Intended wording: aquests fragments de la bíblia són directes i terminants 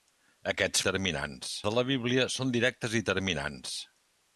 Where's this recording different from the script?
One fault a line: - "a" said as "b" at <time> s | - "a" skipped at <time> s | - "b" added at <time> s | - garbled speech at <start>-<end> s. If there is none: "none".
- "fragments" said as "terminants" at 0.9 s